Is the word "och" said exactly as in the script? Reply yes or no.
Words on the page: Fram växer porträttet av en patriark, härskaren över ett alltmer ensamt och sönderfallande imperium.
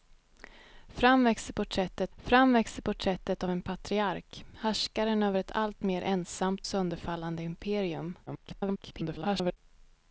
no